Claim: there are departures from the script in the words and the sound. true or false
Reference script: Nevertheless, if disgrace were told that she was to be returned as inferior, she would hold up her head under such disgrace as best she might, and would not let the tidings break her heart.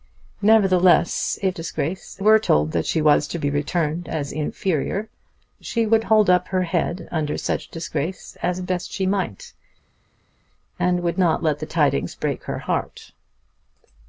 false